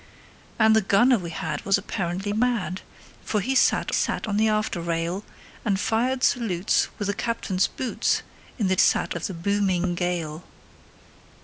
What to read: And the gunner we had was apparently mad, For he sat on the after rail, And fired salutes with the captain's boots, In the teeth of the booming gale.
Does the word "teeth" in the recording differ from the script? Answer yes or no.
yes